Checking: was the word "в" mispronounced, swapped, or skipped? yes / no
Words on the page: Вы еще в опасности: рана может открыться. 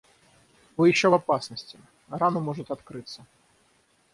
no